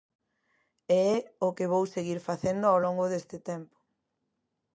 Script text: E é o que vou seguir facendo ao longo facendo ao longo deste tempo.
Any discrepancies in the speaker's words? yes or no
yes